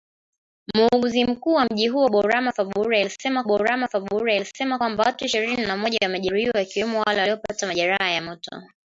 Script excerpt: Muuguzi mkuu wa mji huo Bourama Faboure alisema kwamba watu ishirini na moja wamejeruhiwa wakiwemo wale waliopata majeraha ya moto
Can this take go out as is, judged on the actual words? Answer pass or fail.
fail